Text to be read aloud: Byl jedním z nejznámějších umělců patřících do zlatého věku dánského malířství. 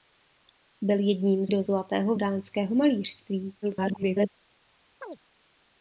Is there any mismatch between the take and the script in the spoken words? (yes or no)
yes